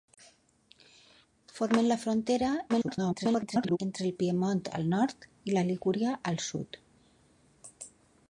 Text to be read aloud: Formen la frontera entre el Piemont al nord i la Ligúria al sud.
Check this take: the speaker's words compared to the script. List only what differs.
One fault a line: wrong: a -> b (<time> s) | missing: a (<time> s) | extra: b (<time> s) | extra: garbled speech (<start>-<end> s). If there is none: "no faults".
extra: garbled speech (2.7-3.8 s)